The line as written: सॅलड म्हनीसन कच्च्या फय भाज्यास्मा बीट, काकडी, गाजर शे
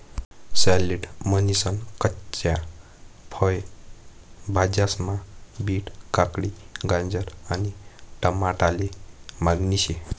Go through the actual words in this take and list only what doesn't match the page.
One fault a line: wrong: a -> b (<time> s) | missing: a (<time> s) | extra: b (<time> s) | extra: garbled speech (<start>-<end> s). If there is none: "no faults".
extra: आणि टमाटाले मागणी (7.5 s)